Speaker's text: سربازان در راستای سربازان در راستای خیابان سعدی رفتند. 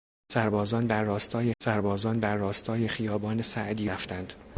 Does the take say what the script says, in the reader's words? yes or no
yes